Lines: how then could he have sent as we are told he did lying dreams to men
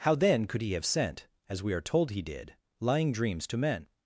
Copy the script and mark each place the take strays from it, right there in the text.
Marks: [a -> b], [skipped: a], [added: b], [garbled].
how then could he have sent as we are told he did lying dreams to men